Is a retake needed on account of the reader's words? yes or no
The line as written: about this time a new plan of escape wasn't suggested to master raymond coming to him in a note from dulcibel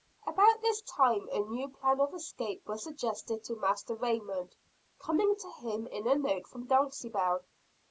yes